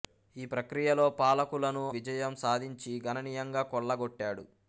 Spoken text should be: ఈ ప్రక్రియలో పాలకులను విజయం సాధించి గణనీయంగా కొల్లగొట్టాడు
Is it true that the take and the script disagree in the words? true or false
false